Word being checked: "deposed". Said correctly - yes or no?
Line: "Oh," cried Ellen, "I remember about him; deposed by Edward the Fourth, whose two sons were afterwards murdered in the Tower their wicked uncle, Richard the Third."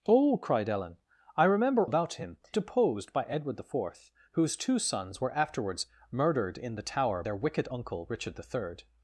yes